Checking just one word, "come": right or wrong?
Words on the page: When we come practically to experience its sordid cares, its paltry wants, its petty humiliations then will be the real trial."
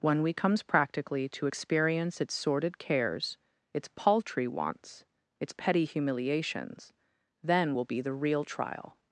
wrong